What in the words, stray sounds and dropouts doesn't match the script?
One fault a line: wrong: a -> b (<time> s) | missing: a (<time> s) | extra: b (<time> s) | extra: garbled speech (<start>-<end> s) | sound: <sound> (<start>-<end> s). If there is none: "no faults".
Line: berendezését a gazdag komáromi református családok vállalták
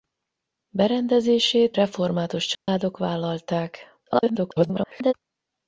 missing: a gazdag komáromi (1.8 s)
sound: dropout (2.5-2.7 s)
extra: garbled speech (4.1-5.1 s)